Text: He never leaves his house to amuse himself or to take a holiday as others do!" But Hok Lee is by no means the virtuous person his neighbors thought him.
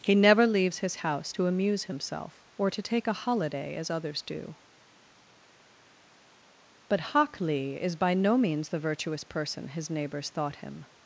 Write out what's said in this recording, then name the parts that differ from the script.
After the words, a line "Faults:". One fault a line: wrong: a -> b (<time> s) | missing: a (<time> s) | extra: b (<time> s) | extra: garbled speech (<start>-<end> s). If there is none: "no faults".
He never leaves his house to amuse himself or to take a holiday as others do!" But Hok Lee is by no means the virtuous person his neighbors thought him.
Faults:
no faults